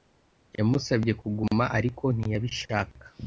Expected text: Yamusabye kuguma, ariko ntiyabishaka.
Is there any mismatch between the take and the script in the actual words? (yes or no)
no